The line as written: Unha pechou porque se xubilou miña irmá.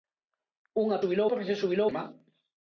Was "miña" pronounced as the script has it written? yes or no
no